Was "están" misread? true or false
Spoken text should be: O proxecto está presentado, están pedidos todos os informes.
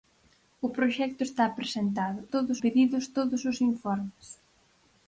true